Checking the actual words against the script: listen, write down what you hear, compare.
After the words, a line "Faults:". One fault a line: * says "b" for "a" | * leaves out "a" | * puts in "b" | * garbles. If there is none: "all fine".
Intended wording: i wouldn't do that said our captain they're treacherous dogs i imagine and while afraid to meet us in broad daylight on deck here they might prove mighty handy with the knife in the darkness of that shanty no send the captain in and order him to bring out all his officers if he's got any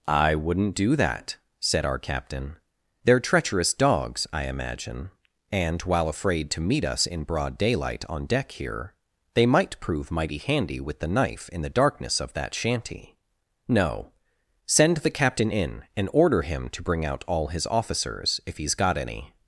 i wouldn't do that said our captain they're treacherous dogs i imagine and while afraid to meet us in broad daylight on deck here they might prove mighty handy with the knife in the darkness of that shanty no send the captain in and order him to bring out all his officers if he's got any
Faults:
all fine